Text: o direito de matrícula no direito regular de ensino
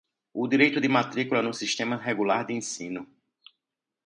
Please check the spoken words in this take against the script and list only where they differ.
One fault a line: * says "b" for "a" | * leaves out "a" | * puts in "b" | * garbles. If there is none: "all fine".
* says "sistema" for "direito"